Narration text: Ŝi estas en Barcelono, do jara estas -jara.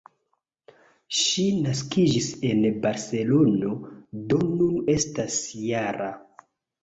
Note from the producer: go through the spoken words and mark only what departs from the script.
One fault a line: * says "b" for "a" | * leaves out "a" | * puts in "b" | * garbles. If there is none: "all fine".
* says "naskiĝis" for "estas"
* says "nun" for "jara"